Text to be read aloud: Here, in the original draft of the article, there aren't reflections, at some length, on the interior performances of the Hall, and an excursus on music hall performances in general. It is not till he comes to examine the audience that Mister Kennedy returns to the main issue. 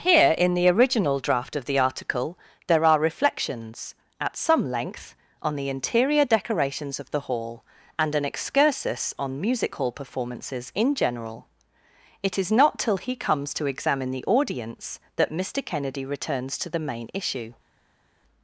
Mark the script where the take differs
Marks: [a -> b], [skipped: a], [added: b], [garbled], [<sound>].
Here, in the original draft of the article, there [aren't -> are] reflections, at some length, on the interior [performances -> decorations] of the Hall, and an excursus on music hall performances in general. It is not till he comes to examine the audience that Mister Kennedy returns to the main issue.